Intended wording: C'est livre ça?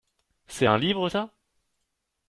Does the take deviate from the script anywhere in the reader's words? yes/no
yes